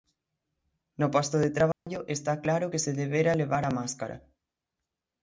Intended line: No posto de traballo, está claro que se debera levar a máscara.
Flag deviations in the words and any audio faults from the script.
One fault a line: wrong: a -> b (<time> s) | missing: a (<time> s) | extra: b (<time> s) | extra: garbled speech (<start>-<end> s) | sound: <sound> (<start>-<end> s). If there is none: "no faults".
sound: dropout (1.7-1.9 s)